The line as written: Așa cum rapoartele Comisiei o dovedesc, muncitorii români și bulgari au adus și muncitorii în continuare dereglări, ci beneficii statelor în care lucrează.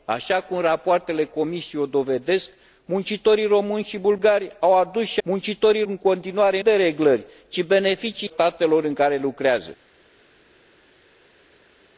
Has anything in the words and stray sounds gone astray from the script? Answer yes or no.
no